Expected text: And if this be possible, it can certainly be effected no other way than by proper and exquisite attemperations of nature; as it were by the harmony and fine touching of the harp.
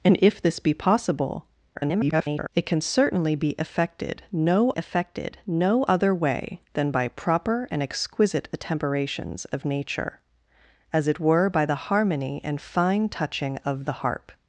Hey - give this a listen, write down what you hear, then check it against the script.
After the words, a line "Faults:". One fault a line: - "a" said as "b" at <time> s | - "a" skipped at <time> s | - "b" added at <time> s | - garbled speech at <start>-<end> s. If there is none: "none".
And if this be possible, [garbled] it can certainly be effected no effected no other way than by proper and exquisite attemperations of nature; as it were by the harmony and fine touching of the harp.
Faults:
- garbled speech at 1.7-2.5 s
- "effected no" added at 4.8 s